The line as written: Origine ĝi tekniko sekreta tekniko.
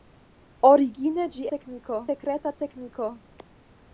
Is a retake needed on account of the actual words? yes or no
no